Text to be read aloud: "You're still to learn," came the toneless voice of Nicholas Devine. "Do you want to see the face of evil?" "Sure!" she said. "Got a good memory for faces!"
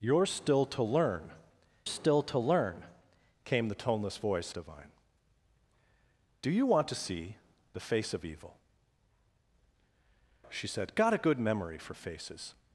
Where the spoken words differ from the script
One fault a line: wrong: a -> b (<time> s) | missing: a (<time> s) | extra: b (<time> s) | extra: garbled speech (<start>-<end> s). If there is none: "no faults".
extra: still to learn (1.8 s)
missing: of Nicholas (4.5 s)
missing: Sure (8.6 s)